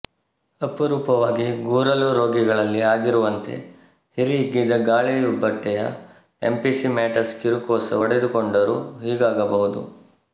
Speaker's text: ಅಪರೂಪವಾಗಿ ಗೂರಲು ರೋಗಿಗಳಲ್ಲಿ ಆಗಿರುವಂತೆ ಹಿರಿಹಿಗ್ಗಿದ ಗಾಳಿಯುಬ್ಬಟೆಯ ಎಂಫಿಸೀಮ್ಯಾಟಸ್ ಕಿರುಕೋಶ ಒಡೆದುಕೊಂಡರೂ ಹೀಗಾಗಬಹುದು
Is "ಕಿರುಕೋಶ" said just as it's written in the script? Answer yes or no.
yes